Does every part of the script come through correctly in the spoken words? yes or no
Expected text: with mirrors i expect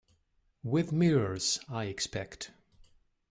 yes